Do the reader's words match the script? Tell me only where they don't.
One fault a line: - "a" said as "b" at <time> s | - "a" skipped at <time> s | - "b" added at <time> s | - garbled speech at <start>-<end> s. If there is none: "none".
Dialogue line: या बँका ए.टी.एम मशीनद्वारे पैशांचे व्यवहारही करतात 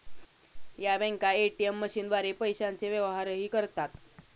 none